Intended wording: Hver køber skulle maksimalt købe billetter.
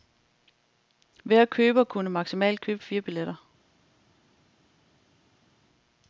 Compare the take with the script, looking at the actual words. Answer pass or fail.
fail